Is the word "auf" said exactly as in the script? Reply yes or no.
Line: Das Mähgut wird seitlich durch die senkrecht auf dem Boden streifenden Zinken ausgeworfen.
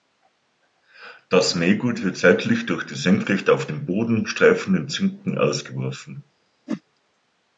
yes